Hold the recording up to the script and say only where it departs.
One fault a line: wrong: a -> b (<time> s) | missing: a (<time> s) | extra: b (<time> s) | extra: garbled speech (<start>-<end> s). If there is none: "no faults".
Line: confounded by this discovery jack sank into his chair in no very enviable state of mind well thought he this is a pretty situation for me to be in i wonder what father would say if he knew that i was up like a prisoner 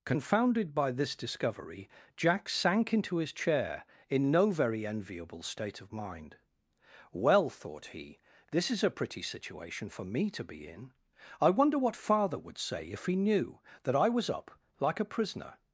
no faults